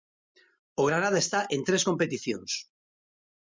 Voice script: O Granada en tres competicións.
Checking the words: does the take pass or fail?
fail